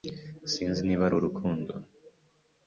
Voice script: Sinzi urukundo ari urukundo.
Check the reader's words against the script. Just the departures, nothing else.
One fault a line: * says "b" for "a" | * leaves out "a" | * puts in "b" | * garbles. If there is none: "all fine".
* says "niba" for "urukundo"